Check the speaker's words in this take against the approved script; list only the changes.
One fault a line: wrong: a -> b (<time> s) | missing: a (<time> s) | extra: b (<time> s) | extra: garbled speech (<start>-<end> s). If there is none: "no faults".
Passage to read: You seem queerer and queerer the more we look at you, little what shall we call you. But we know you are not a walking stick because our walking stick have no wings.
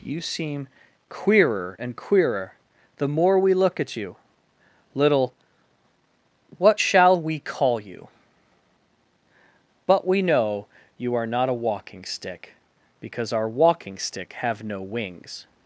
no faults